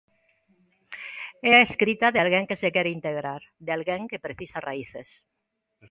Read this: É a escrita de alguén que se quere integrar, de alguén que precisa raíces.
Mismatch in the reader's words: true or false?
false